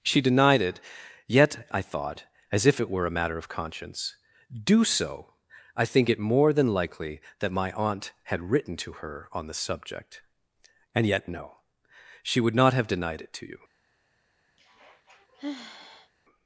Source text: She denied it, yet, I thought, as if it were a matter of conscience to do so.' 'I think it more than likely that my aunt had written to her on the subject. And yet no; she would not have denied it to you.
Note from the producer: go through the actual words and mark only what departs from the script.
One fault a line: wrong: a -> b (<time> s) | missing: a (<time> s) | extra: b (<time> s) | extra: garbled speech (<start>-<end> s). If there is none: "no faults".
missing: to (4.2 s)